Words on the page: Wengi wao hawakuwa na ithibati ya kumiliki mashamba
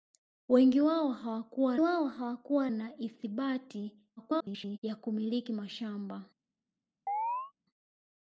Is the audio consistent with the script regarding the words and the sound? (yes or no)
no